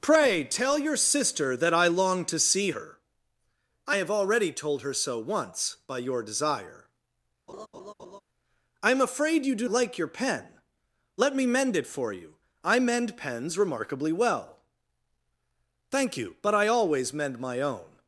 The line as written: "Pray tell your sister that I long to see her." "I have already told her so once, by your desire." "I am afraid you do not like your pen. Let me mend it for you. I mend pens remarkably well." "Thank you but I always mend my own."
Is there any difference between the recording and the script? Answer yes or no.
yes